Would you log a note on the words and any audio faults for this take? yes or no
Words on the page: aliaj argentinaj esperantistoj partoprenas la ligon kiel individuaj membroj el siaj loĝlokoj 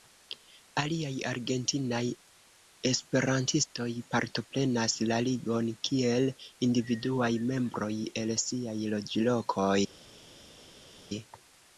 no